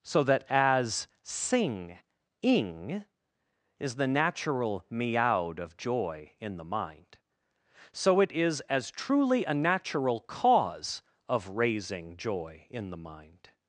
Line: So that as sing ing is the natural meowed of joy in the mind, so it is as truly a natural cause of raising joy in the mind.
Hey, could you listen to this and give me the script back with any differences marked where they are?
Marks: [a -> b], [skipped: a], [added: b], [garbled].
So that as sing ing is the natural meowed of joy in the mind, so it is as truly a natural cause of raising joy in the mind.